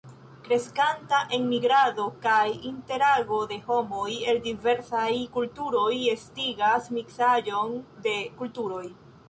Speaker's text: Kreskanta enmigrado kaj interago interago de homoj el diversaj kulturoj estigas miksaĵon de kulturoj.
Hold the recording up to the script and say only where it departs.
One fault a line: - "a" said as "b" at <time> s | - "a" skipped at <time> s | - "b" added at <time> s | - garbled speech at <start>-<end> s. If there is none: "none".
- "interago" skipped at 3.4 s